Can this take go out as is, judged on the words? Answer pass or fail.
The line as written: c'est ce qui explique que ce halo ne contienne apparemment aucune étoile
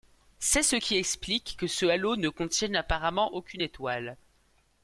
pass